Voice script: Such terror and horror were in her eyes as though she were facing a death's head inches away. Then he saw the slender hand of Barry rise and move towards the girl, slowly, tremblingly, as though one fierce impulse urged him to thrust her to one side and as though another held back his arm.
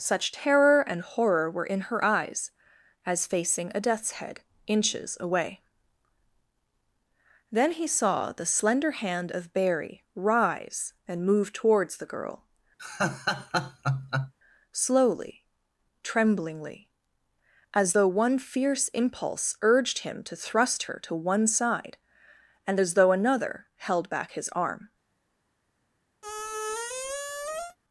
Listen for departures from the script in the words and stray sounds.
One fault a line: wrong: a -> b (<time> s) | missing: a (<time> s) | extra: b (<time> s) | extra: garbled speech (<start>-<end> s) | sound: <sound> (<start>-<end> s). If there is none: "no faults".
missing: though she were (3.3 s)
sound: laugh (12.8-14.3 s)
sound: squeak (26.2-27.8 s)